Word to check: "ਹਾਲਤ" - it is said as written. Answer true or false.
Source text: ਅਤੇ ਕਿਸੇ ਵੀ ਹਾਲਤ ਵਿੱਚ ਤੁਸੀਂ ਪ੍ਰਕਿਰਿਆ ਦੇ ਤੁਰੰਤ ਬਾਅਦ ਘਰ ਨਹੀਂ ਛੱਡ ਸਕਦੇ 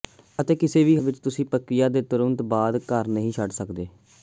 false